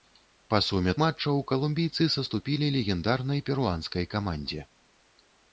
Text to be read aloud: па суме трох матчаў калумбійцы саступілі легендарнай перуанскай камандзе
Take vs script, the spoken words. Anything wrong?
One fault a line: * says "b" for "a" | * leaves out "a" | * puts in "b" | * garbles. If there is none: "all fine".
* leaves out "трох"